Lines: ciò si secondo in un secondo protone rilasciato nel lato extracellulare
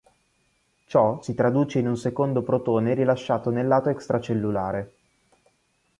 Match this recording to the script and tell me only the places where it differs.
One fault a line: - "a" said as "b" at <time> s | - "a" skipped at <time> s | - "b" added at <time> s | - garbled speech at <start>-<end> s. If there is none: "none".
- "secondo" said as "traduce" at 1.3 s